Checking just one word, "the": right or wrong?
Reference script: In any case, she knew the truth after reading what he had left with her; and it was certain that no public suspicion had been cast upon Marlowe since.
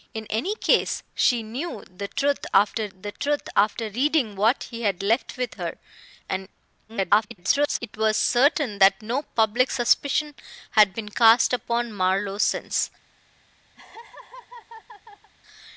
right